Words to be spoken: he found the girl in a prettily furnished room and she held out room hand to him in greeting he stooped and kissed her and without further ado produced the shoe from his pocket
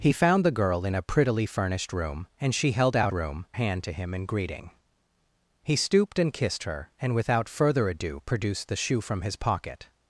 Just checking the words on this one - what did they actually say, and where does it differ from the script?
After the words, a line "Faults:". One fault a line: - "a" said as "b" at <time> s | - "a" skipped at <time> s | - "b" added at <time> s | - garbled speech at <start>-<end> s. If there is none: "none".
he found the girl in a prettily furnished room and she held out room hand to him in greeting he stooped and kissed her and without further ado produced the shoe from his pocket
Faults:
none